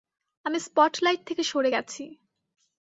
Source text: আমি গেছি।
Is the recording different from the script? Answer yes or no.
yes